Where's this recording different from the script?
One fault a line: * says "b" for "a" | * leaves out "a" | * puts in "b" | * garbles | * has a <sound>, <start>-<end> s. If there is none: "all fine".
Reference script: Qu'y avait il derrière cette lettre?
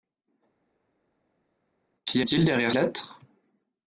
* leaves out "avait"
* leaves out "cette"